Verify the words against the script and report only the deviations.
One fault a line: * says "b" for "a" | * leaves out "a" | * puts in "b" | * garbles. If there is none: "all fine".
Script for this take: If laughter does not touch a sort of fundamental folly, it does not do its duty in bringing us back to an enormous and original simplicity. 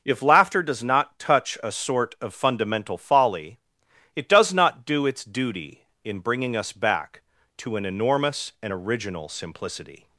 all fine